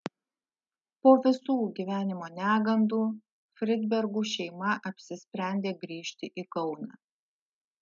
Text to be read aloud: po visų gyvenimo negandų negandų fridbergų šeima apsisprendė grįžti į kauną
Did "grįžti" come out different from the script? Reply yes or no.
no